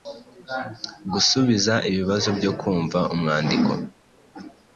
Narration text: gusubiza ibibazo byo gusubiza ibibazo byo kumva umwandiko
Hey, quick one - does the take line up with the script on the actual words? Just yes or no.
no